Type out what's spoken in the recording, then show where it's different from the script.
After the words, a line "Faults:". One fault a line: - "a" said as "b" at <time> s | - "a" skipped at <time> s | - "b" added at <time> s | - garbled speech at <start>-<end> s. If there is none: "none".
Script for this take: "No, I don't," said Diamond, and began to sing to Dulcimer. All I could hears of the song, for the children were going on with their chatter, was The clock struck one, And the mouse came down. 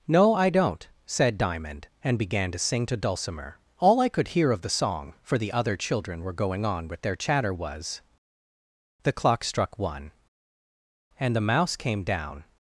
"No, I don't," said Diamond, and began to sing to Dulcimer. All I could hear of the song, for the other children were going on with their chatter, was The clock struck one, And the mouse came down.
Faults:
- "hears" said as "hear" at 4.3 s
- "other" added at 5.5 s